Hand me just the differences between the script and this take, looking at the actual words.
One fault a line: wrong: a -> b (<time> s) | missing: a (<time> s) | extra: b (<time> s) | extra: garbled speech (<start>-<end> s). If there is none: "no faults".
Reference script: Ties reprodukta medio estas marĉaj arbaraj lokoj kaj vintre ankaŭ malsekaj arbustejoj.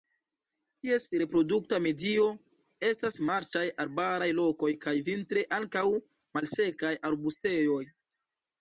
no faults